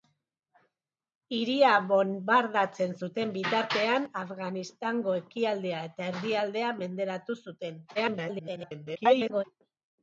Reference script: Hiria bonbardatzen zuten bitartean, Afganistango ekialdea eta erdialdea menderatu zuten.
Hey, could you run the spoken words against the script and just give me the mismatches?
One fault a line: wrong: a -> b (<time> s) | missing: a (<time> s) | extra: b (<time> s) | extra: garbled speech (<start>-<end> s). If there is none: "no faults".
extra: garbled speech (7.9-9.4 s)